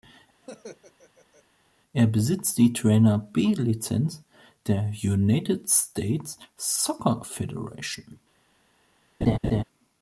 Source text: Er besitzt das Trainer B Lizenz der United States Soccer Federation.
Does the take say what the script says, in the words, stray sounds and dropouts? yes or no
no